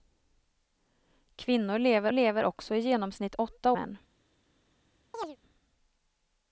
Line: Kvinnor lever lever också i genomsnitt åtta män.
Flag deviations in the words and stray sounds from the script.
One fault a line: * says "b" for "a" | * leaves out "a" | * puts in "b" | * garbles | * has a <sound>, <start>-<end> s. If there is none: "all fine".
* has a chirp, 5.1-5.4 s